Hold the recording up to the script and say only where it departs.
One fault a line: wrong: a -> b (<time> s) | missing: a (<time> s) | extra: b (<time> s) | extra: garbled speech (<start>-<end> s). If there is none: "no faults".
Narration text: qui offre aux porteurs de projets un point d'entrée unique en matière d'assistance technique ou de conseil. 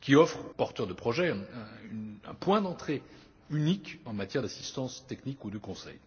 missing: aux (0.4 s)